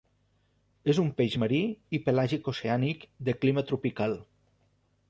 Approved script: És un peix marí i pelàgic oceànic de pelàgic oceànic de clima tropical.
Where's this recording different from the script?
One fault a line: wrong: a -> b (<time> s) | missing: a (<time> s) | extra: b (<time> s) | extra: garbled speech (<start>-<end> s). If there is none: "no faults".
missing: pelàgic oceànic de (3.4 s)